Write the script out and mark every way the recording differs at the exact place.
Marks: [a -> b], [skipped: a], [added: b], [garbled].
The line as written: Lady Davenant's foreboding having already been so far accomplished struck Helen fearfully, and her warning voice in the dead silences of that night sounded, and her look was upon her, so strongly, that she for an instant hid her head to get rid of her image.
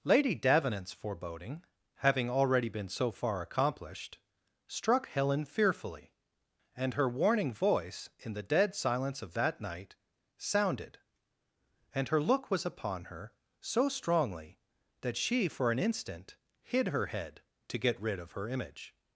Lady Davenant's foreboding having already been so far accomplished struck Helen fearfully, and her warning voice in the dead [silences -> silence] of that night sounded, and her look was upon her, so strongly, that she for an instant hid her head to get rid of her image.